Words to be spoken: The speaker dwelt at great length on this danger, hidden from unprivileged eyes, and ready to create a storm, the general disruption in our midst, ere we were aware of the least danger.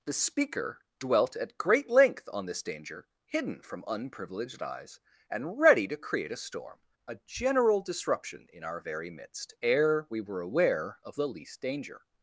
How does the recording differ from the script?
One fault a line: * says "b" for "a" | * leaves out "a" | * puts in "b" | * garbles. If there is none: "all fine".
* says "a" for "the"
* puts in "very"